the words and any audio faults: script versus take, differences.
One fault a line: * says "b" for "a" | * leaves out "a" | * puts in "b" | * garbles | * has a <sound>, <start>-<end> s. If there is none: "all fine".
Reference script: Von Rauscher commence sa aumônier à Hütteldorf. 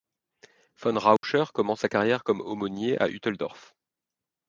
* has a dropout, 1.2-1.2 s
* puts in "carrière comme"